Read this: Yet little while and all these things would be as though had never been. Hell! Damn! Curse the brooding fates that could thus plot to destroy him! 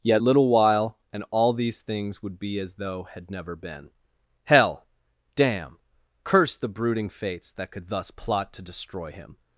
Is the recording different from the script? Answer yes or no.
no